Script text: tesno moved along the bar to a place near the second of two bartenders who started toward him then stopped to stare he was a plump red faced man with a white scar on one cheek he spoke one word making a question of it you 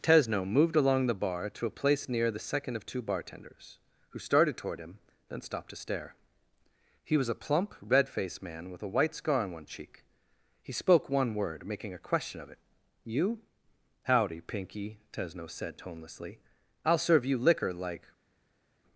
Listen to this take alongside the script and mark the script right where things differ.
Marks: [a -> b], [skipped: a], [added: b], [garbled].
tesno moved along the bar to a place near the second of two bartenders who started toward him then stopped to stare he was a plump red faced man with a white scar on one cheek he spoke one word making a question of it you [added: howdy pinky tesno said tonelessly i'll serve you liquor like]